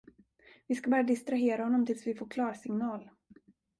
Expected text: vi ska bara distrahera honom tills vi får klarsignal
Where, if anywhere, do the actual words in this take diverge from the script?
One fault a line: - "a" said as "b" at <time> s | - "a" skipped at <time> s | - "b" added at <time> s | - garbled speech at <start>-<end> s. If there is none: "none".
none